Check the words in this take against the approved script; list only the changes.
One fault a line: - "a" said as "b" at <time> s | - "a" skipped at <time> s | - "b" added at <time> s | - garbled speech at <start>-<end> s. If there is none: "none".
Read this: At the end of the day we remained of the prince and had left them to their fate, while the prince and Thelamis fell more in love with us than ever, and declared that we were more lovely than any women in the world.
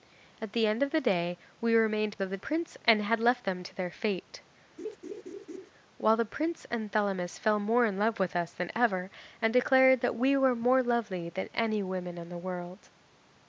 none